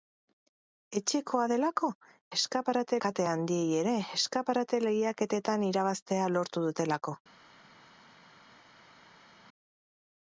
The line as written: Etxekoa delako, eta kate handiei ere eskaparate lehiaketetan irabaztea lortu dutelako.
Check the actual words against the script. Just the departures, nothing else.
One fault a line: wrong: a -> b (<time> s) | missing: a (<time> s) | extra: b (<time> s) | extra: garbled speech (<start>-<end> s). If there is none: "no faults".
wrong: eta -> eskaparate (2.4 s)